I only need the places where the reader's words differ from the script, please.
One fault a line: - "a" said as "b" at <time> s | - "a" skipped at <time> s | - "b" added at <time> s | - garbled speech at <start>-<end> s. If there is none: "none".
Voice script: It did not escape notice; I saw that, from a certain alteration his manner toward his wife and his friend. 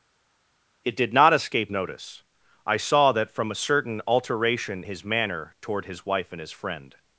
none